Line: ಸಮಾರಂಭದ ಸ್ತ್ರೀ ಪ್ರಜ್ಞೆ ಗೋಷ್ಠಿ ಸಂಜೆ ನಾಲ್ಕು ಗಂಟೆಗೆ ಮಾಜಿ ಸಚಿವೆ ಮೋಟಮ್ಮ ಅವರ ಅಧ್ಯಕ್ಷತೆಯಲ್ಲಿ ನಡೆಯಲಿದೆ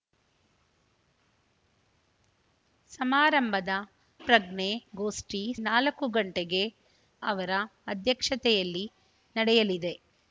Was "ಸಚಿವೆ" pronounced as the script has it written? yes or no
no